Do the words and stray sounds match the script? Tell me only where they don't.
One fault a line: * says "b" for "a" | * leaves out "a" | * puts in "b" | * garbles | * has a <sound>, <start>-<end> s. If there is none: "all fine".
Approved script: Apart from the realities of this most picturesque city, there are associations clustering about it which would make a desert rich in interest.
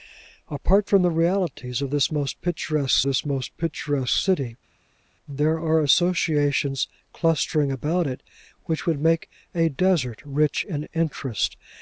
* puts in "this most picturesque"